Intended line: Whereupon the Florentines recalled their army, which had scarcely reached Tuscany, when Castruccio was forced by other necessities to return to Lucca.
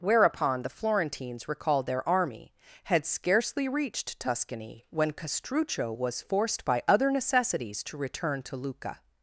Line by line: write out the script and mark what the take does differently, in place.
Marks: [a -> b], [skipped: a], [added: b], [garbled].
Whereupon the Florentines recalled their army, [skipped: which] had scarcely reached Tuscany, when Castruccio was forced by other necessities to return to Lucca.